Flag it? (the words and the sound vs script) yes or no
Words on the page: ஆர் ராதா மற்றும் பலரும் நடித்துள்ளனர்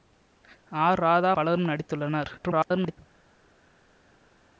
yes